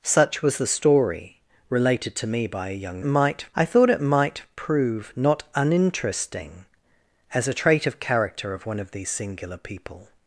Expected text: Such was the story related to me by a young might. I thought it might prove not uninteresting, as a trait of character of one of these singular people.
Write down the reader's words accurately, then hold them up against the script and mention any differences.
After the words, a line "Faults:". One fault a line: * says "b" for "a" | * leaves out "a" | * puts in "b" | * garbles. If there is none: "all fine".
Such was the story related to me by a young might. I thought it might prove not uninteresting, as a trait of character of one of these singular people.
Faults:
all fine